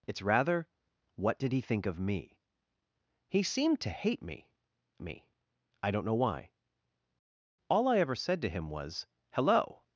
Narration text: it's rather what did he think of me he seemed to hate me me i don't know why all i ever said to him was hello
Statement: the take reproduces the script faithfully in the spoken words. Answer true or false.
true